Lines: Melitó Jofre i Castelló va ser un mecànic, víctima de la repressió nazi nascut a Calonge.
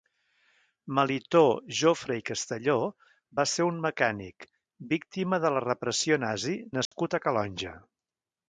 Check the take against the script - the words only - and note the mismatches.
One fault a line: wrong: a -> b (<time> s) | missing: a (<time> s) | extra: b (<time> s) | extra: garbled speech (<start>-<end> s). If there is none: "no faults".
no faults